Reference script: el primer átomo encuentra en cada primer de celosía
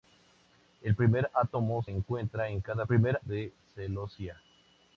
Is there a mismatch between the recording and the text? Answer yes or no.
no